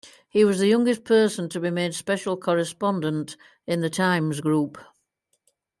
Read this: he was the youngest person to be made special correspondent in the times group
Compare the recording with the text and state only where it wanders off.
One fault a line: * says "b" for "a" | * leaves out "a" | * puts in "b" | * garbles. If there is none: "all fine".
all fine